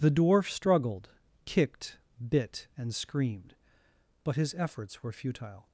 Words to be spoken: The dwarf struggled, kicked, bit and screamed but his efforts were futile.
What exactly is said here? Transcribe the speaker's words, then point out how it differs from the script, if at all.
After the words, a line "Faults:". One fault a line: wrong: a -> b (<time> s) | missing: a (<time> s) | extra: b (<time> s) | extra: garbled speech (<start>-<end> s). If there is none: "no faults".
The dwarf struggled, kicked, bit and screamed but his efforts were futile.
Faults:
no faults